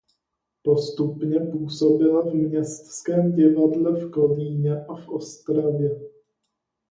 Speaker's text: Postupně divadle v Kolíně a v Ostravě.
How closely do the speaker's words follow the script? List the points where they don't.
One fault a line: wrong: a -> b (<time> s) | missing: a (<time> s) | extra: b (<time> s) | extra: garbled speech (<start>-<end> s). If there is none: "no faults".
extra: působila v Městském (1.4 s)